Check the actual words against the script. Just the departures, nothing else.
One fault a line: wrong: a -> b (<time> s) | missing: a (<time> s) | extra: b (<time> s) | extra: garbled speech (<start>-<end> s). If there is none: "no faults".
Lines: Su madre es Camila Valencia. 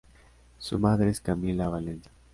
no faults